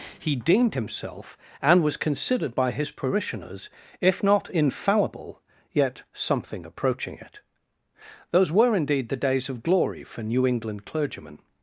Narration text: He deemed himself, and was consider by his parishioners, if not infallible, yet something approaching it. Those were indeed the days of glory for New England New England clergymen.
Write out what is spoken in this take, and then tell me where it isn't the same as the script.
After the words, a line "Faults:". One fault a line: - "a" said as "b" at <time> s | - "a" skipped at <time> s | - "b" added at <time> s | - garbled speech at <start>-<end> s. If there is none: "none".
He deemed himself, and was considered by his parishioners, if not infallible, yet something approaching it. Those were indeed the days of glory for New England clergymen.
Faults:
- "consider" said as "considered" at 2.0 s
- "New England" skipped at 10.8 s